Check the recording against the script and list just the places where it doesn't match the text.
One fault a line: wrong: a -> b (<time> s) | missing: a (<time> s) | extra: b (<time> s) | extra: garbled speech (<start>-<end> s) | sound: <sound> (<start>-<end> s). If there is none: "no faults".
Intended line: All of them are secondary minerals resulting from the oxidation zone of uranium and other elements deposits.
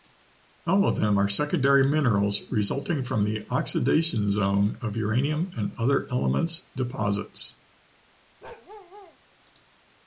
sound: bark (8.4-9.2 s)